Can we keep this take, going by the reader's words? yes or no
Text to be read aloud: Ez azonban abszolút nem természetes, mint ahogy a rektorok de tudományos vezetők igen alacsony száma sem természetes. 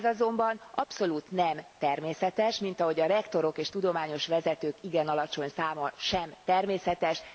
no